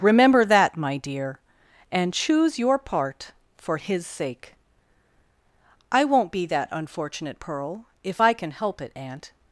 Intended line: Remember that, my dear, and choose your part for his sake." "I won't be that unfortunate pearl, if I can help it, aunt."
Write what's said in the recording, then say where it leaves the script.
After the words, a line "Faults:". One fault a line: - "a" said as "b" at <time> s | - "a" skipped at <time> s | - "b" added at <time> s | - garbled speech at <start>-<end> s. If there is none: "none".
Remember that, my dear, and choose your part for his sake." "I won't be that unfortunate pearl, if I can help it, aunt."
Faults:
none